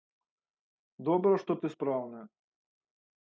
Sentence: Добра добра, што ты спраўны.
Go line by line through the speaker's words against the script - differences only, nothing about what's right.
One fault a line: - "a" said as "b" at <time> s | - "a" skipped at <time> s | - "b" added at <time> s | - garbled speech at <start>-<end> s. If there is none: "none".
- "добра" skipped at 1.3 s